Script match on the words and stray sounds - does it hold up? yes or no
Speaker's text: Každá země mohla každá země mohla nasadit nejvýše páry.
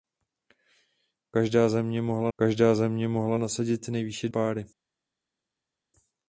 yes